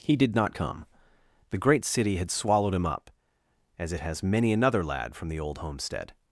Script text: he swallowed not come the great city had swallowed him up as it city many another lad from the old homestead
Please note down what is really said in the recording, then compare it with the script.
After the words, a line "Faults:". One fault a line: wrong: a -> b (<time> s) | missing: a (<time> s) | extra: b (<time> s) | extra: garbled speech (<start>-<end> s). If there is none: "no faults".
he did not come the great city had swallowed him up as it has many another lad from the old homestead
Faults:
wrong: swallowed -> did (0.1 s)
wrong: city -> has (4.0 s)